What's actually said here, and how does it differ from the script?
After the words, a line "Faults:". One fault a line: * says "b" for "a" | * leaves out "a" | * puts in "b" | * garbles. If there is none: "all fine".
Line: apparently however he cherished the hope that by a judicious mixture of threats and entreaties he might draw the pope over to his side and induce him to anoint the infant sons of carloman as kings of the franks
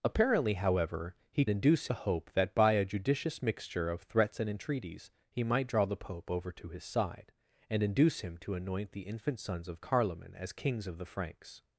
apparently however he induce the hope that by a judicious mixture of threats and entreaties he might draw the pope over to his side and induce him to anoint the infant sons of carloman as kings of the franks
Faults:
* says "induce" for "cherished"